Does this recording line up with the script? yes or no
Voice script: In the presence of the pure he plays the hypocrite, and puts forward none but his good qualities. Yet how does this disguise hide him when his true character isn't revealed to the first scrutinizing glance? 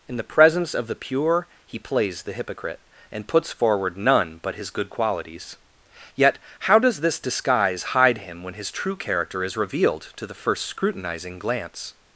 no